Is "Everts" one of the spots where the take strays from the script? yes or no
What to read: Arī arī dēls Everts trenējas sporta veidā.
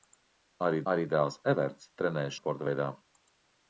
no